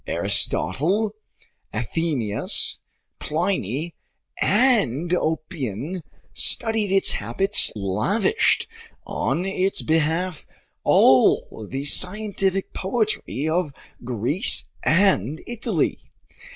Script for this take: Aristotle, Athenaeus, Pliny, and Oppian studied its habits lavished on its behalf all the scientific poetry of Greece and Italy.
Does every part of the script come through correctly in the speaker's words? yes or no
yes